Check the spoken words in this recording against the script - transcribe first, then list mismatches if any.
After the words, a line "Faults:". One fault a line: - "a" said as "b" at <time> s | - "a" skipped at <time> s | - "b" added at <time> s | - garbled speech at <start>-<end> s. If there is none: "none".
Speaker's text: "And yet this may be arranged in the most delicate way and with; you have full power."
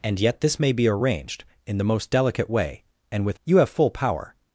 "And yet this may be arranged in the most delicate way and with; you have full power."
Faults:
none